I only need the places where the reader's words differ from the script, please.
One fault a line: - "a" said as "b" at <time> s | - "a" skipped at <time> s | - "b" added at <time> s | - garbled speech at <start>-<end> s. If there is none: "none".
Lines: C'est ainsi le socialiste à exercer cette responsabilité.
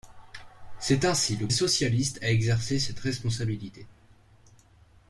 none